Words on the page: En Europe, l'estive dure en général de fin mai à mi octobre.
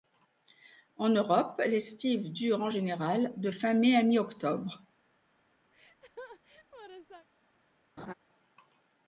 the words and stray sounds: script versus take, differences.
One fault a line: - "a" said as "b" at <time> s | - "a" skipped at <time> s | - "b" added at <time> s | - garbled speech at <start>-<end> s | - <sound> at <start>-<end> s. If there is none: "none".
- laugh at 5.7-7.3 s
- laugh at 8.0-8.1 s